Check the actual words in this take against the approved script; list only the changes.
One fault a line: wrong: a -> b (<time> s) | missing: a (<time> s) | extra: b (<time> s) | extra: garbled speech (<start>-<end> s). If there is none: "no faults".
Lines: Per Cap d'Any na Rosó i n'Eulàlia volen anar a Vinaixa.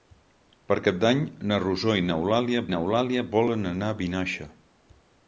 extra: n'Eulàlia (2.7 s)